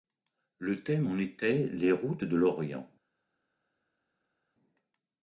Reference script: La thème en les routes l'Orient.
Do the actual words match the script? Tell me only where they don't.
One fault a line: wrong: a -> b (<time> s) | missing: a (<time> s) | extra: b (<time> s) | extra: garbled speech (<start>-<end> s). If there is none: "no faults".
wrong: La -> Le (0.6 s)
extra: était (1.2 s)
extra: de (2.2 s)